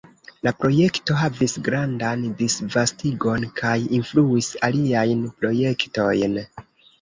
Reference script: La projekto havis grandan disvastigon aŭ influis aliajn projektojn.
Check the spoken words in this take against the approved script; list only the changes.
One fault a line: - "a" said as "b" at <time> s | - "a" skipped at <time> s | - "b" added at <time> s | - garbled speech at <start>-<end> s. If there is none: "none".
- "aŭ" said as "kaj" at 3.6 s